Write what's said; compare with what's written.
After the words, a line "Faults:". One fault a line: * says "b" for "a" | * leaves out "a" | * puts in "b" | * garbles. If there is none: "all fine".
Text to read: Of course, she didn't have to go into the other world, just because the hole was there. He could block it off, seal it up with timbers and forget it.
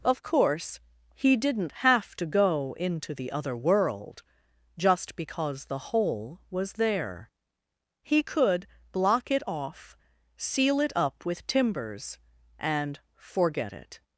Of course, he didn't have to go into the other world, just because the hole was there. He could block it off, seal it up with timbers and forget it.
Faults:
* says "he" for "she"